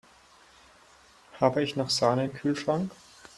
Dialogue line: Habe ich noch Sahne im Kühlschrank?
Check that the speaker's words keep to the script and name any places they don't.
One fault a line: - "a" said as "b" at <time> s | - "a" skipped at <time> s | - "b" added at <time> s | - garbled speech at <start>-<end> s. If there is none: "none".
none